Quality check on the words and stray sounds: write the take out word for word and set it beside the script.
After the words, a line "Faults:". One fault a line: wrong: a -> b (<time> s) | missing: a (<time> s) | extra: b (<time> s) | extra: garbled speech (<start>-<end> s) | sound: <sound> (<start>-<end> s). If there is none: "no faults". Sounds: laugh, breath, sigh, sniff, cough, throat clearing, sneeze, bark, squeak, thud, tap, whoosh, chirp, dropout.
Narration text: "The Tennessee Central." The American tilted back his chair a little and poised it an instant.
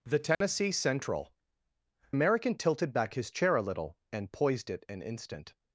"The Tennessee Central." American tilted back his chair a little and poised it an instant.
Faults:
sound: dropout (0.3-0.4 s)
missing: The (1.3 s)